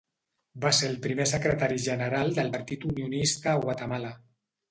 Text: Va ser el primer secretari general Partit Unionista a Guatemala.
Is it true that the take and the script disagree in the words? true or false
true